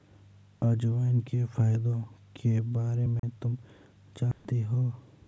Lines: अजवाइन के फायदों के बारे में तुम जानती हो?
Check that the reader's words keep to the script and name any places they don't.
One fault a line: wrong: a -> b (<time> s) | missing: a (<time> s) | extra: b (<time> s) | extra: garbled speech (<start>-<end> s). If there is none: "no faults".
no faults